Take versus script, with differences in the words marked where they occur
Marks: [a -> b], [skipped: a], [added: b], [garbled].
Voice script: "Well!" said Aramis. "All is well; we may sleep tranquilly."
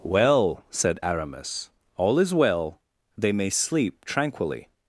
"Well!" said Aramis. "All is well; [we -> they] may sleep tranquilly."